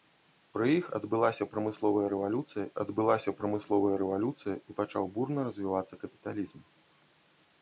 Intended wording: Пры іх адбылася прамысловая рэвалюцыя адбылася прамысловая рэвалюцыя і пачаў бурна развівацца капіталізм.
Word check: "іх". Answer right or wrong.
right